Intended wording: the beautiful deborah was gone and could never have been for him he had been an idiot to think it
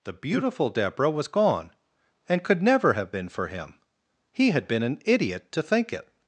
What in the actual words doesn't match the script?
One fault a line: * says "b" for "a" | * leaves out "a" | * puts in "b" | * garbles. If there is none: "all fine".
all fine